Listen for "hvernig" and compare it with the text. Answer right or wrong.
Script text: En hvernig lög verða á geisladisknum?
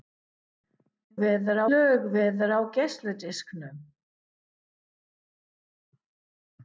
wrong